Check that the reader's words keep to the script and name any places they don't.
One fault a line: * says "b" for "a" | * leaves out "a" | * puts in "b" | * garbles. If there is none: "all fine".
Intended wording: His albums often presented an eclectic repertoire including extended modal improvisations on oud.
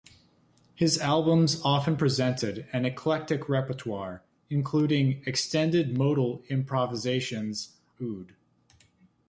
* leaves out "on"